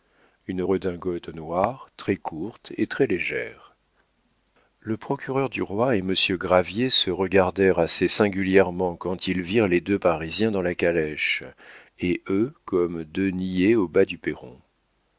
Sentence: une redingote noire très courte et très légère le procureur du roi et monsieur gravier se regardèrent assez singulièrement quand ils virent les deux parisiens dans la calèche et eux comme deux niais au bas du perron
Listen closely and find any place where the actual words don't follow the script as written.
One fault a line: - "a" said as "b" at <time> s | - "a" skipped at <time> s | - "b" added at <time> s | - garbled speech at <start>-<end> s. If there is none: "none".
none